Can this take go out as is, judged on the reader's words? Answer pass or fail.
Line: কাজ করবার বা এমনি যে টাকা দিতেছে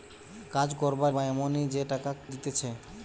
pass